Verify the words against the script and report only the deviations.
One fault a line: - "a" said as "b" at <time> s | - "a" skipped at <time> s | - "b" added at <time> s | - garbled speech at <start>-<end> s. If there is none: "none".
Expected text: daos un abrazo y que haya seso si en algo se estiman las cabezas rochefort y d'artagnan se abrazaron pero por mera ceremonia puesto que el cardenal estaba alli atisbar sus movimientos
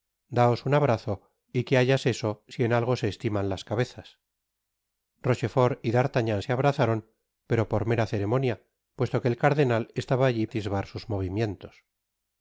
none